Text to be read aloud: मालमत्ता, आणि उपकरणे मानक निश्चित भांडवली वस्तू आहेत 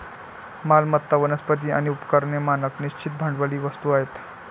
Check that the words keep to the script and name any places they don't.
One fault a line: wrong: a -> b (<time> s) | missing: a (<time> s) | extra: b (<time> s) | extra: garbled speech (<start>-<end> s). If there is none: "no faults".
extra: वनस्पती (1.2 s)